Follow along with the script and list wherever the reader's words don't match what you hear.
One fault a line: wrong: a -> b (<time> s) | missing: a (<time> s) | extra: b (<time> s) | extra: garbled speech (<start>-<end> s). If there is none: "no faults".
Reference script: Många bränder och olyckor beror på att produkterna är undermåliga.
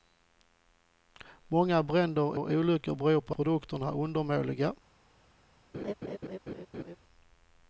extra: och (2.3 s)
missing: att (3.3 s)